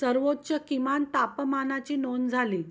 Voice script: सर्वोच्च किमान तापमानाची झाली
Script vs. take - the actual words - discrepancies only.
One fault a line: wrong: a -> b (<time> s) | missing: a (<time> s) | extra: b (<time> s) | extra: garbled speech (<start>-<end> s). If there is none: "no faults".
extra: नोंद (1.9 s)